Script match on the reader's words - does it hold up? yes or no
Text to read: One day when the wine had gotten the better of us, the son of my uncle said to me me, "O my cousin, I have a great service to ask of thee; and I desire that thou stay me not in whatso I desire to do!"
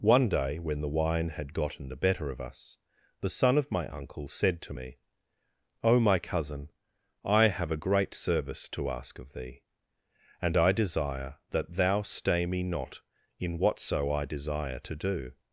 no